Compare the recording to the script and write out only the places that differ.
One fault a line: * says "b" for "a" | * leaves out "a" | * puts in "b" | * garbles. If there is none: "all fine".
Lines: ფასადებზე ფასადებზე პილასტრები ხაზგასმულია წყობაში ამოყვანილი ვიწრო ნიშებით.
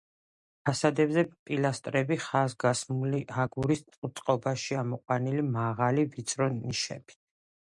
* leaves out "ფასადებზე"
* puts in "აგურის"
* puts in "მაღალი"